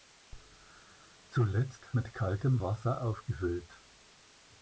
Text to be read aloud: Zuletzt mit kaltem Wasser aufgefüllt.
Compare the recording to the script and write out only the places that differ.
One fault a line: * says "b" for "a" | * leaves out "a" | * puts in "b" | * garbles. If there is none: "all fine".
all fine